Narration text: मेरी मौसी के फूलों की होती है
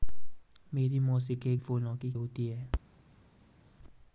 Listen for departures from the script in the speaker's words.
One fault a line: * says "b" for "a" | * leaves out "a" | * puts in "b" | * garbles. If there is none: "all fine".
all fine